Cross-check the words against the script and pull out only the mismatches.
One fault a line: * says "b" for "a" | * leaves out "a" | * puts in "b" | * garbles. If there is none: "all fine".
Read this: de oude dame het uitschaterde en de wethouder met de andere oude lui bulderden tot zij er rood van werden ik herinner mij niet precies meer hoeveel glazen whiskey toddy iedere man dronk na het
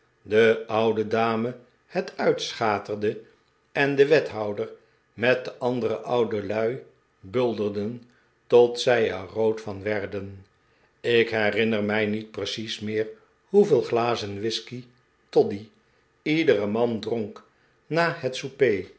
all fine